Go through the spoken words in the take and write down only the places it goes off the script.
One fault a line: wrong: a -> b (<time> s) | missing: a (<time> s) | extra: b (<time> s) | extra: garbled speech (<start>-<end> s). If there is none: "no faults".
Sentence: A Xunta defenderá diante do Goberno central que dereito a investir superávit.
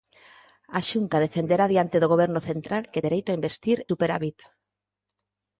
no faults